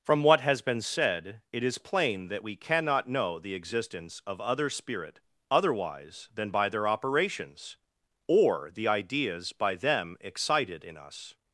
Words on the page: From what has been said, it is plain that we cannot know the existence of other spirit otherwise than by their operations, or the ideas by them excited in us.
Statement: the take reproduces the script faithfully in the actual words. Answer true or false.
true